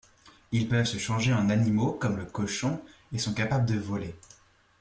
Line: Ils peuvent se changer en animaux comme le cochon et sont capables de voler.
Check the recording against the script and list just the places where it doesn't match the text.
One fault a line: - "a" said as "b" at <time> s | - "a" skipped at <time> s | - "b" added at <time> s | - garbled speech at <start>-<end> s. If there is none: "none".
none